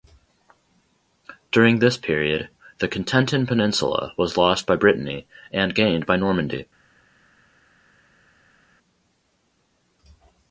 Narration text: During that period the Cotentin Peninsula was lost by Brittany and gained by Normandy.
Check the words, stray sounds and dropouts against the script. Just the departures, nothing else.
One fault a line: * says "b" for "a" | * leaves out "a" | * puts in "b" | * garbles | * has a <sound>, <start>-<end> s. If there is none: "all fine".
* says "this" for "that"